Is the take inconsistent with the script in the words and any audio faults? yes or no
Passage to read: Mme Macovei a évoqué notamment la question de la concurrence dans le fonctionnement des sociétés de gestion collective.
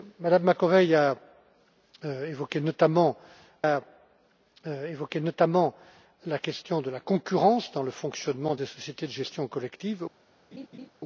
yes